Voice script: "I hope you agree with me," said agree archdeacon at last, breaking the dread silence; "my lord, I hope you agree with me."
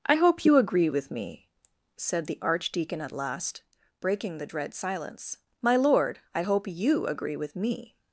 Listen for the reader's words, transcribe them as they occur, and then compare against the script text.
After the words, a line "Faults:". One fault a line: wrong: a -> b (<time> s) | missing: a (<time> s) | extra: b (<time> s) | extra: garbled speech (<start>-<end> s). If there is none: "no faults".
"I hope you agree with me," said the archdeacon at last, breaking the dread silence; "my lord, I hope you agree with me."
Faults:
wrong: agree -> the (2.3 s)